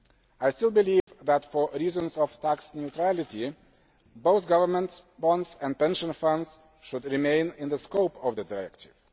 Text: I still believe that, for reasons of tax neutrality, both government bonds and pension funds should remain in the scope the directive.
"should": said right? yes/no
yes